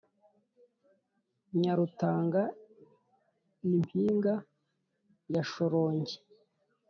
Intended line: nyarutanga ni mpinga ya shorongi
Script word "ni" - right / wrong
right